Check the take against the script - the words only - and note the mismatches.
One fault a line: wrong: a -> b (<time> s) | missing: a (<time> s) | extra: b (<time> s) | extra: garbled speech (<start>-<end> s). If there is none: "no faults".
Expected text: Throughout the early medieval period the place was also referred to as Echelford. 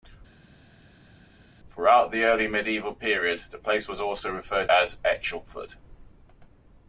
missing: to (4.7 s)